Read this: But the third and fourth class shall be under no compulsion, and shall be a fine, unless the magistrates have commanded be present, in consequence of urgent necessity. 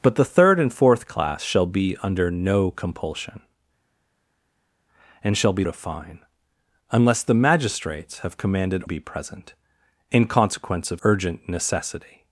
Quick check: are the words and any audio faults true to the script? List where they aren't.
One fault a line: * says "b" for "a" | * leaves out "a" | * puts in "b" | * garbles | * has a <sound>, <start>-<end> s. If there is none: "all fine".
all fine